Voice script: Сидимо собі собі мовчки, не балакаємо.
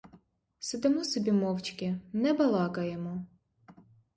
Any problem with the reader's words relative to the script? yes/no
yes